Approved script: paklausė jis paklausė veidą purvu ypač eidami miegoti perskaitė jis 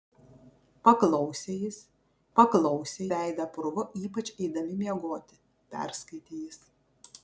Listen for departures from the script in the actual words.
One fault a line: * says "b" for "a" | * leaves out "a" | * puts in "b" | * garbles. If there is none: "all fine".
all fine